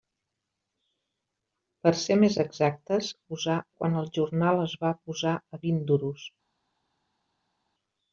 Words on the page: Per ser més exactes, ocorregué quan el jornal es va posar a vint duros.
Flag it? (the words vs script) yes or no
yes